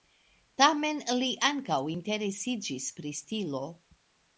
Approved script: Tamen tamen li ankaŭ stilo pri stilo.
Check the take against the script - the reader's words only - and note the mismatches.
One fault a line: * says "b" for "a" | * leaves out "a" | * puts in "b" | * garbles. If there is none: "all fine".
* leaves out "tamen"
* says "interesiĝis" for "stilo"